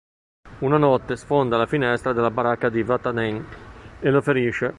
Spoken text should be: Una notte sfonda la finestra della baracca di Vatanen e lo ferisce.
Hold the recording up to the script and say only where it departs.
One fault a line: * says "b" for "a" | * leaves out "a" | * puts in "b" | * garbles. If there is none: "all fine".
all fine